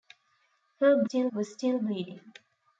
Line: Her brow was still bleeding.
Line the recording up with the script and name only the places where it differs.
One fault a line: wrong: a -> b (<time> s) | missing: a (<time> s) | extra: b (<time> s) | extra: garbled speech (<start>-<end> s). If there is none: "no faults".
wrong: brow -> still (1.0 s)